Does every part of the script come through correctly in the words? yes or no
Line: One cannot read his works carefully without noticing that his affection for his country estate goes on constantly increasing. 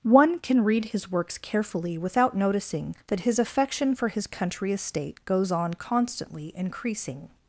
no